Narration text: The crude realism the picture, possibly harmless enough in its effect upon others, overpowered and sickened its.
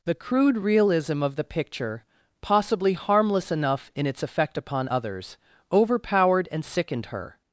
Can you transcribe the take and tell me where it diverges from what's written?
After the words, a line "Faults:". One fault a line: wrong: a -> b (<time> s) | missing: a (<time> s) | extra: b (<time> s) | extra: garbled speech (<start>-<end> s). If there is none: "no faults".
The crude realism of the picture, possibly harmless enough in its effect upon others, overpowered and sickened her.
Faults:
extra: of (1.2 s)
wrong: its -> her (7.1 s)